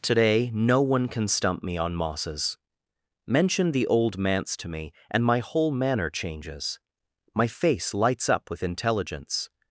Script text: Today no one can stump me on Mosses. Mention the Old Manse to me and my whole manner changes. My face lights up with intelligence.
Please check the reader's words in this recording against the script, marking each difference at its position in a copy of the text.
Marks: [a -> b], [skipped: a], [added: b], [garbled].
Today no one can stump me on Mosses. Mention the Old Manse to me and my whole manner changes. My face lights up with intelligence.